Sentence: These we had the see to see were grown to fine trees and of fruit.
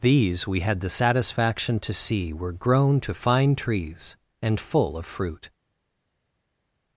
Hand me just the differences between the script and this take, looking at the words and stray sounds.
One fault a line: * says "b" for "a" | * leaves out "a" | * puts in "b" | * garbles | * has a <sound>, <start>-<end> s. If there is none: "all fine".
* says "satisfaction" for "see"
* puts in "full"